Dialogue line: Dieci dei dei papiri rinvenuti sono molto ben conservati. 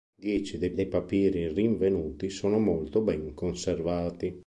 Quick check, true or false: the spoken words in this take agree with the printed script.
true